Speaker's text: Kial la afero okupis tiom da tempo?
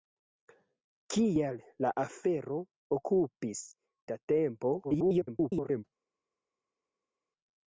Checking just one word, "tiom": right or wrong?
wrong